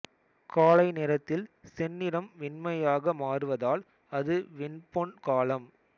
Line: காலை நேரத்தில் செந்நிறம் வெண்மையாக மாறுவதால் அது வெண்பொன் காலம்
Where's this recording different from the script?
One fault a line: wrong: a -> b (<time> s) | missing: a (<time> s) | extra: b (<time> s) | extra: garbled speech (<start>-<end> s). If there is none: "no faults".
no faults